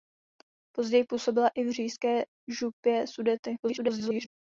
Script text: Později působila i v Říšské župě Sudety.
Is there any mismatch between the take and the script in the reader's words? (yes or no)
yes